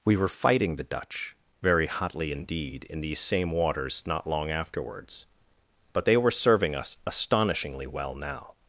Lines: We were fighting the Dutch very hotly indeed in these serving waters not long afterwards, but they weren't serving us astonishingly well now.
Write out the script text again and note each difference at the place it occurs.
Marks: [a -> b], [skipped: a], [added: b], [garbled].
We were fighting the Dutch very hotly indeed in these [serving -> same] waters not long afterwards, but they [weren't -> were] serving us astonishingly well now.